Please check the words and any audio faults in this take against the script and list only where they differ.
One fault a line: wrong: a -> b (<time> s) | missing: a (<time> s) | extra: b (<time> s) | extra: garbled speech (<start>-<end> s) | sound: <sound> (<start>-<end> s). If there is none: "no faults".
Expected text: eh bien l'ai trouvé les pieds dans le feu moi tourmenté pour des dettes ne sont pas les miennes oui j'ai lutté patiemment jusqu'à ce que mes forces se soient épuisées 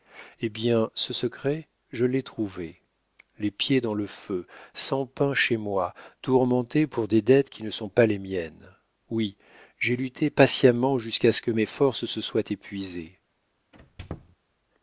extra: ce secret je (0.9 s)
extra: sans pain chez (4.7 s)
extra: qui (7.5 s)
sound: squeak (13.7-14.4 s)